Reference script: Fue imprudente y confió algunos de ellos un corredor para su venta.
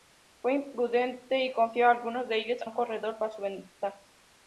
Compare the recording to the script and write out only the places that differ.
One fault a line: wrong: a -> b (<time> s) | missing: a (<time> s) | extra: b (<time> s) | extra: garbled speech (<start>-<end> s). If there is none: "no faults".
no faults